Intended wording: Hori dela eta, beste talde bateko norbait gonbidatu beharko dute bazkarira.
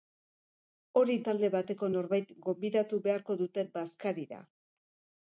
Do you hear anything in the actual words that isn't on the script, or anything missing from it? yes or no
yes